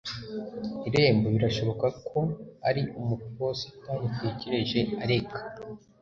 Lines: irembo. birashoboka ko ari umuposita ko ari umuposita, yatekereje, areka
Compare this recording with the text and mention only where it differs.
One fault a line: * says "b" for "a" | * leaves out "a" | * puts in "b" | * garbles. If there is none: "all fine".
* leaves out "ko ari umuposita"